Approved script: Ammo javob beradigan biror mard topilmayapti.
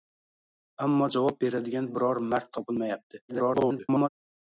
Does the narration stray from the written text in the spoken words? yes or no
yes